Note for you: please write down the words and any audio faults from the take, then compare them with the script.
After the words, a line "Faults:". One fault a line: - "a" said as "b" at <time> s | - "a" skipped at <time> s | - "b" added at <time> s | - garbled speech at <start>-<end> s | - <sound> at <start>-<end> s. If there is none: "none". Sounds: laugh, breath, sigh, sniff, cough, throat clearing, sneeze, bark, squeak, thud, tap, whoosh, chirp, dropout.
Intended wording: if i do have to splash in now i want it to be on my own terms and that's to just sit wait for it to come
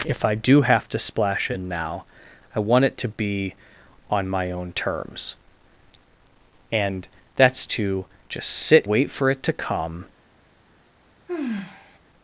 if i do have to splash in now i want it to be on my own terms and that's to just sit wait for it to come
Faults:
- sigh at 11.3-12.0 s